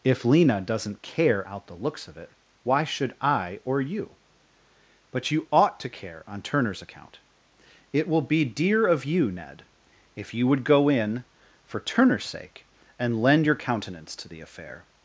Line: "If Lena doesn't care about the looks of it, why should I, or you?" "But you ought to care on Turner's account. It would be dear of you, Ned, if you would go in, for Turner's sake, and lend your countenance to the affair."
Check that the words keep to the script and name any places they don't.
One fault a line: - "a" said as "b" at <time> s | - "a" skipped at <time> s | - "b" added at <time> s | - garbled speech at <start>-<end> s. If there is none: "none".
- "about" said as "out" at 1.5 s
- "would" said as "will" at 8.1 s